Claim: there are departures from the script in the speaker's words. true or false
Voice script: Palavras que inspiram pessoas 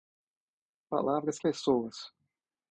true